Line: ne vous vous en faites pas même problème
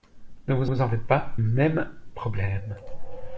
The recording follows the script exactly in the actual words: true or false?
true